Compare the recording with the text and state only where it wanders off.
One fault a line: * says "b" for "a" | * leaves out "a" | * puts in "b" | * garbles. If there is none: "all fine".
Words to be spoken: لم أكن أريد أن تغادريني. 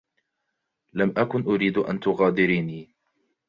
all fine